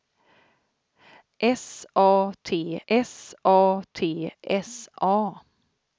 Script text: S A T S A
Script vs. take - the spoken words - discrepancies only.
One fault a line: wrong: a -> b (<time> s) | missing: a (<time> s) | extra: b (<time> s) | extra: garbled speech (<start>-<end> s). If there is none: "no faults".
extra: T S A (3.9 s)